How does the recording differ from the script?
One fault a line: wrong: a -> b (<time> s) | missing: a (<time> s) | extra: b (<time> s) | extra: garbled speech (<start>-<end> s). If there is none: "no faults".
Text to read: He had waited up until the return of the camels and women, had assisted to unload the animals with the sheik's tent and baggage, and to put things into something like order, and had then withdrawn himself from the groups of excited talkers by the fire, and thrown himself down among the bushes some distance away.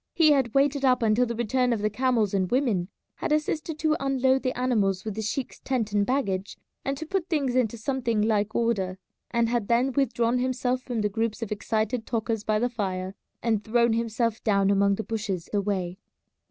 missing: some distance (15.5 s)